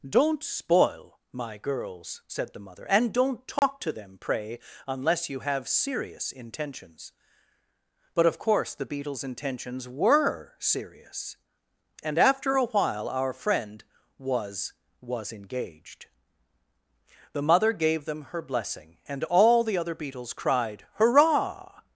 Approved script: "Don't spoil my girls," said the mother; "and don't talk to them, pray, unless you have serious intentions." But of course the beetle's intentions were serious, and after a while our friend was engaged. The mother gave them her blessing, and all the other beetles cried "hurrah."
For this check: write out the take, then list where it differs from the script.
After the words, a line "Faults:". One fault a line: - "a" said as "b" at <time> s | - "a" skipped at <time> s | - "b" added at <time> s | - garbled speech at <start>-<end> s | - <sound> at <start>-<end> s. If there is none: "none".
"Don't spoil my girls," said the mother; "and don't talk to them, pray, unless you have serious intentions." But of course the beetle's intentions were serious, and after a while our friend was was engaged. The mother gave them her blessing, and all the other beetles cried "hurrah."
Faults:
- dropout at 3.6-3.6 s
- "was" added at 15.0 s